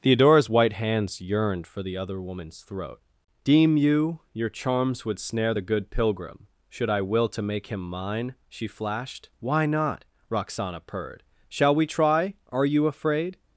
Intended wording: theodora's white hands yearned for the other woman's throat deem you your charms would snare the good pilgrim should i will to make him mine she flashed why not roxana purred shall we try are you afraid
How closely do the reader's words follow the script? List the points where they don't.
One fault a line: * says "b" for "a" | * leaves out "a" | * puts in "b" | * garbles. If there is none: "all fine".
all fine